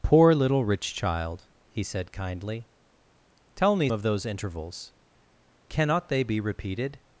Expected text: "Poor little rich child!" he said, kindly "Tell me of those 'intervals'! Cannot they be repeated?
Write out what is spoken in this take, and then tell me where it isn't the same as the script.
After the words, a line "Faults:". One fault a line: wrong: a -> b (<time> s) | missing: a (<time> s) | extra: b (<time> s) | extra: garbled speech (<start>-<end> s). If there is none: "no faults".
"Poor little rich child!" he said, kindly "Tell me of those 'intervals'! Cannot they be repeated?
Faults:
no faults